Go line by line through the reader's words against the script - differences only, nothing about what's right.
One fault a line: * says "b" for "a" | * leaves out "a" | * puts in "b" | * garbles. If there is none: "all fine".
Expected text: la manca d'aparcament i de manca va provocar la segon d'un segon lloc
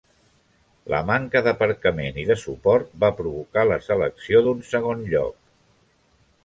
* says "suport" for "manca"
* says "selecció" for "segon"